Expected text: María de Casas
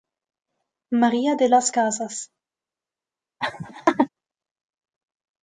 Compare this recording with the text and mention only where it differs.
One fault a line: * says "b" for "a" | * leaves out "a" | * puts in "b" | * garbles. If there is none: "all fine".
* puts in "las"